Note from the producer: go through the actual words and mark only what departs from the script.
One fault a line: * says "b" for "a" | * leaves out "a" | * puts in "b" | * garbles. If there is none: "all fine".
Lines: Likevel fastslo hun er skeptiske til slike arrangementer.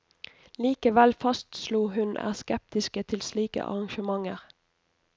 all fine